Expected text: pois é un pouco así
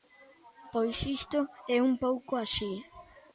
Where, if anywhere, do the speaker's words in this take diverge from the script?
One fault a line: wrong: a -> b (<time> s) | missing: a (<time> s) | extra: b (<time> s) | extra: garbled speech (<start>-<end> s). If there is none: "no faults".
extra: isto (1.2 s)